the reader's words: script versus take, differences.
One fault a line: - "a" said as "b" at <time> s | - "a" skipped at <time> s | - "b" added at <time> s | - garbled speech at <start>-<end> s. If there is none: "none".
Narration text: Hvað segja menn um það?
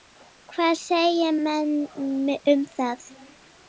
none